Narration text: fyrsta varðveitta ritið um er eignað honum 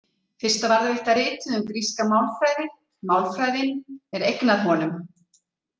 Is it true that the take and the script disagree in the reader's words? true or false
true